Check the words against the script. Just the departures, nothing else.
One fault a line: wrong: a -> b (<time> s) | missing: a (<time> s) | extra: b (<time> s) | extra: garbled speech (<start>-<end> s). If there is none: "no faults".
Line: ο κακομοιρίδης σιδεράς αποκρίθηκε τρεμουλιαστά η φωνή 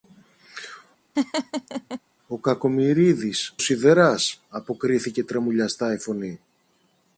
no faults